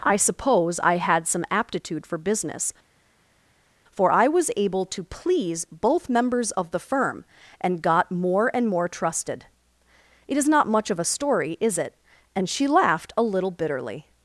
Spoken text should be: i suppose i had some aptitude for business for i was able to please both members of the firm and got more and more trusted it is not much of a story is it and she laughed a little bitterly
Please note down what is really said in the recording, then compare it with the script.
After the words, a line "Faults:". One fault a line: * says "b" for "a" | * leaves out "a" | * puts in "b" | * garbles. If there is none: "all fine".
i suppose i had some aptitude for business for i was able to please both members of the firm and got more and more trusted it is not much of a story is it and she laughed a little bitterly
Faults:
all fine